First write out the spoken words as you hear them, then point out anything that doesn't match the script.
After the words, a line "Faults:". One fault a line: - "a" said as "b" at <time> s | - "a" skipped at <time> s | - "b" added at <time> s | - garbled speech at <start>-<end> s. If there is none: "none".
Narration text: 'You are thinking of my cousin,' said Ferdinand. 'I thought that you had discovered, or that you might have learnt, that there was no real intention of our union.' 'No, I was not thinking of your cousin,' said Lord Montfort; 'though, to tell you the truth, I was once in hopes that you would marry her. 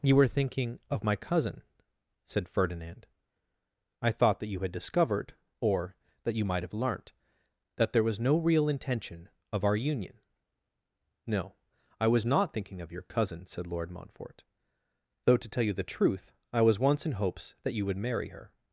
'You were thinking of my cousin,' said Ferdinand. 'I thought that you had discovered, or that you might have learnt, that there was no real intention of our union.' 'No, I was not thinking of your cousin,' said Lord Montfort; 'though, to tell you the truth, I was once in hopes that you would marry her.
Faults:
- "are" said as "were" at 0.1 s